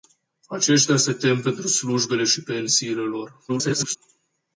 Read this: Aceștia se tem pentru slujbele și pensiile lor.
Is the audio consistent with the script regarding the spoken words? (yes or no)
no